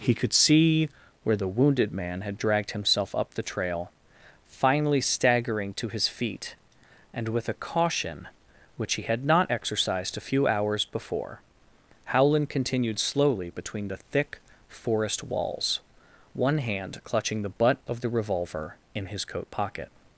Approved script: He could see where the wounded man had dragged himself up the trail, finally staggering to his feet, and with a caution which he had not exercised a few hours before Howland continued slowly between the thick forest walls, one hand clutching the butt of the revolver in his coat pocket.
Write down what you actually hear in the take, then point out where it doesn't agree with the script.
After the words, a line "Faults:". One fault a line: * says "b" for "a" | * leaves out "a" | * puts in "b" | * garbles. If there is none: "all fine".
He could see where the wounded man had dragged himself up the trail, finally staggering to his feet, and with a caution which he had not exercised a few hours before Howland continued slowly between the thick forest walls, one hand clutching the butt of the revolver in his coat pocket.
Faults:
all fine